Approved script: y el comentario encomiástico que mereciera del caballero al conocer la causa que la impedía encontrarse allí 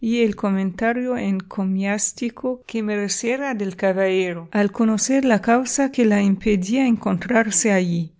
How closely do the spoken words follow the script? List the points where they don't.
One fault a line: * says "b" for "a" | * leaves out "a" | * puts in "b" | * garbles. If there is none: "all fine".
all fine